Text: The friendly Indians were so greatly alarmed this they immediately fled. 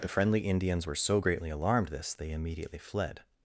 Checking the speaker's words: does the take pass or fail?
pass